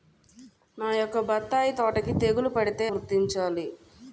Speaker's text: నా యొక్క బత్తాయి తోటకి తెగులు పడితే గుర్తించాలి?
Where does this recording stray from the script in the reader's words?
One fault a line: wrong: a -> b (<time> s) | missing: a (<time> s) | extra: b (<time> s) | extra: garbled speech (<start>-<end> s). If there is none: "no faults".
no faults